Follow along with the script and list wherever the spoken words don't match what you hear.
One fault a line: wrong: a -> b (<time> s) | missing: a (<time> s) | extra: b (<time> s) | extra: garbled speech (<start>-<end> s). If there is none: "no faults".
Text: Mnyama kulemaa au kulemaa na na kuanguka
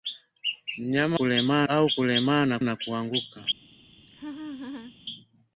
no faults